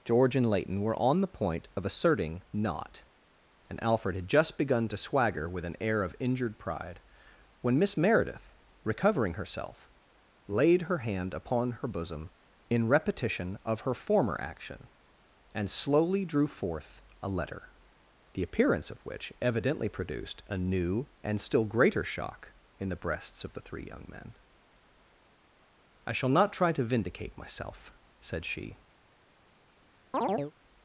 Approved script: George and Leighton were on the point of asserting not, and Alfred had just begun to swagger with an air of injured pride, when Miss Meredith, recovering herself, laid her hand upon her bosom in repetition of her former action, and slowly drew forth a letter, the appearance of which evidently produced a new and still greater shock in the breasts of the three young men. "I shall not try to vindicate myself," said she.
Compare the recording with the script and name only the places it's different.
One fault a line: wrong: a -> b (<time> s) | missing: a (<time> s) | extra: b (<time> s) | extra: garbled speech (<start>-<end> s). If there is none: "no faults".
no faults